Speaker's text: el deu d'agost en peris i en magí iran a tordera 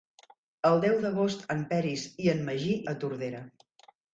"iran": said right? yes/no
no